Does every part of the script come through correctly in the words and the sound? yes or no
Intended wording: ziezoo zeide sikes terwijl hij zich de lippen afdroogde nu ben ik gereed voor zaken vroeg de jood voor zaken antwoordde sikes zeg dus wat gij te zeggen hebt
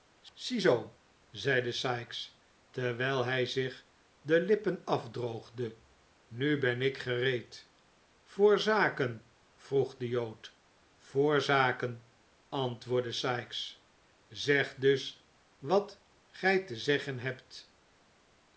yes